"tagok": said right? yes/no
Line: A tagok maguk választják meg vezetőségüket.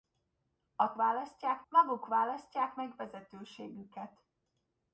no